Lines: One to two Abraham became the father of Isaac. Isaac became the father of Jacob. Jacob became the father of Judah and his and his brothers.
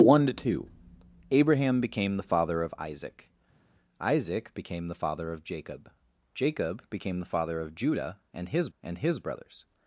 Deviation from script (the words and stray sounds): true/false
false